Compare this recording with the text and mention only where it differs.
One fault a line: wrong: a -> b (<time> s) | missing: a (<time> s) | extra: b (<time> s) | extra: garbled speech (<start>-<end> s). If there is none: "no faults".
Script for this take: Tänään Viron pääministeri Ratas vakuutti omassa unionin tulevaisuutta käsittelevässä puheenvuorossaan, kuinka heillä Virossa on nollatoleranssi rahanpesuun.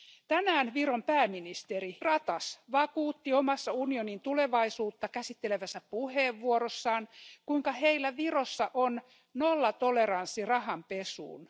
no faults